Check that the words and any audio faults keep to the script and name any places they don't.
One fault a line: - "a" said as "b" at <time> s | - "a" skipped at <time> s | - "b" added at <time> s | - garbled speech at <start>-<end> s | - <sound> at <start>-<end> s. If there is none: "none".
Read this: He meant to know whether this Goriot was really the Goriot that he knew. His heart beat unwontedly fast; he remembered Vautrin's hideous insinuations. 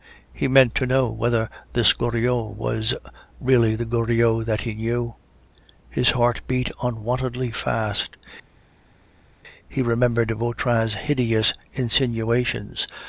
none